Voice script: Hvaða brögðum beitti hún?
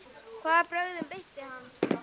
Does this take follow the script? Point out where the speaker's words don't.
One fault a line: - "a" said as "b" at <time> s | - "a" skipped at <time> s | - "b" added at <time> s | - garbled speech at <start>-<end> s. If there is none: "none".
- "hún" said as "hann" at 1.5 s